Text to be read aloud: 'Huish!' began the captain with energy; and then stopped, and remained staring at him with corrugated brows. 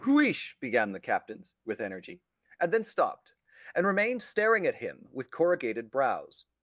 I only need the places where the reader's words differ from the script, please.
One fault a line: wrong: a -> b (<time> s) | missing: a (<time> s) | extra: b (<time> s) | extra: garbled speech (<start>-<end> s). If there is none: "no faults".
wrong: captain -> captains (1.0 s)